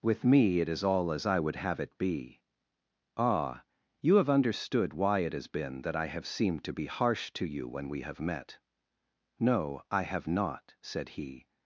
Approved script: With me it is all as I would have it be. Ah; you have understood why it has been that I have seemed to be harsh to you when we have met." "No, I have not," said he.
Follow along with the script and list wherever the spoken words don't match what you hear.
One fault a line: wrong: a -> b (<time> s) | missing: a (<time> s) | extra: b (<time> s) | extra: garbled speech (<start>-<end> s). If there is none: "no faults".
no faults